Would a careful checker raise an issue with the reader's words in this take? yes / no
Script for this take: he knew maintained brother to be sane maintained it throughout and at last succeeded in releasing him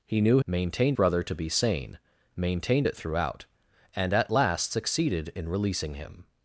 no